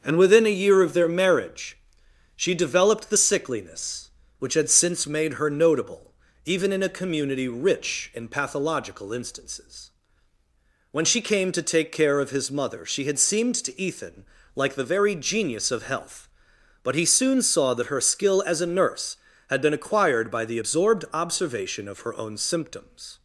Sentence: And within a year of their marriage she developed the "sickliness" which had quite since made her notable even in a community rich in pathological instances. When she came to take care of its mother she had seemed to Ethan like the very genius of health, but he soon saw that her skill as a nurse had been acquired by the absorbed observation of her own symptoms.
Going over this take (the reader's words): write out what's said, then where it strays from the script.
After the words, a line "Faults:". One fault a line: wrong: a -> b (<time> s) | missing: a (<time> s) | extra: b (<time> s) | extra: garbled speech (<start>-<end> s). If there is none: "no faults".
And within a year of their marriage she developed the "sickliness" which had since made her notable even in a community rich in pathological instances. When she came to take care of his mother she had seemed to Ethan like the very genius of health, but he soon saw that her skill as a nurse had been acquired by the absorbed observation of her own symptoms.
Faults:
missing: quite (4.7 s)
wrong: its -> his (12.3 s)